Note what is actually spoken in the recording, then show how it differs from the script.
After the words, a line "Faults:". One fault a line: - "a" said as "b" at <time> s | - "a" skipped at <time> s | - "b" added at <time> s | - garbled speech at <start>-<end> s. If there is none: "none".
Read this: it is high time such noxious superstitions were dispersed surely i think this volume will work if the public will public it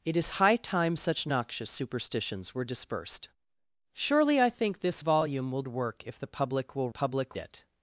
it is high time such noxious superstitions were dispersed surely i think this volume will work if the public will public it
Faults:
none